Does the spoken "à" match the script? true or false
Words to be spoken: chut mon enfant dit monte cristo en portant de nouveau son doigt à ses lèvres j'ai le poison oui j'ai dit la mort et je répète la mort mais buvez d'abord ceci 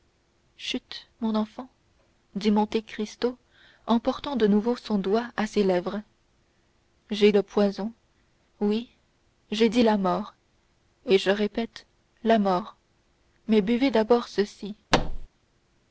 true